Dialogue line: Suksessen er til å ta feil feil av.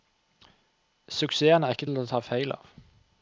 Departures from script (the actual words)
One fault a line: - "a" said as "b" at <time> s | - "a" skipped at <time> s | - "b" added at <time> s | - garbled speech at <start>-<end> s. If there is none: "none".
- "ikke" added at 1.8 s
- "feil" skipped at 2.5 s